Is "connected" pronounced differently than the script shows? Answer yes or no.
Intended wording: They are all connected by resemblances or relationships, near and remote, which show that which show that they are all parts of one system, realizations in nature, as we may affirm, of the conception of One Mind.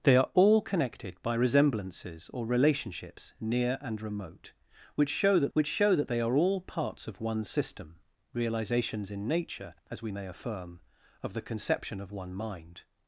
no